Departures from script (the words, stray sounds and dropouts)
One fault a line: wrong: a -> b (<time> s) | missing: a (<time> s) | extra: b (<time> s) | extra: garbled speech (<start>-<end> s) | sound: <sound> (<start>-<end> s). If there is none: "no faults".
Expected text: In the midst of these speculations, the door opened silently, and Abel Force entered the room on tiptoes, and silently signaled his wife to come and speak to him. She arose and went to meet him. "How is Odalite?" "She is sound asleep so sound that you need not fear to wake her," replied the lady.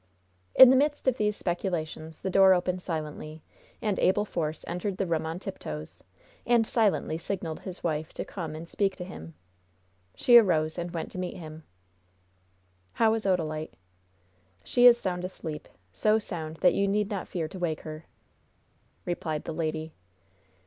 no faults